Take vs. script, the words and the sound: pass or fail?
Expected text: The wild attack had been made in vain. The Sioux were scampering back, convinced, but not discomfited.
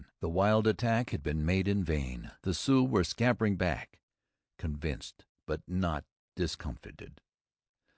pass